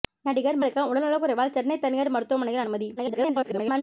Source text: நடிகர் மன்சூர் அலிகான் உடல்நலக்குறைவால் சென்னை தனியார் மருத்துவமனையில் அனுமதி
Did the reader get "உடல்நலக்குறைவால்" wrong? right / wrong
right